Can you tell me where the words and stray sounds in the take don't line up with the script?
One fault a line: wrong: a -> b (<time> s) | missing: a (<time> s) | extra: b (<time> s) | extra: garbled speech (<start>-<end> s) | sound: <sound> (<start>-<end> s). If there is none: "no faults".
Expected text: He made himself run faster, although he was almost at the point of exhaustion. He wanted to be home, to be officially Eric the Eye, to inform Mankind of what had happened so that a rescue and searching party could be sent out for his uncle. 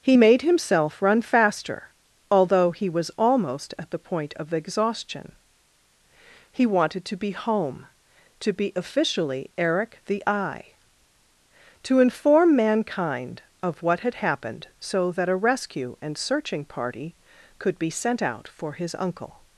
no faults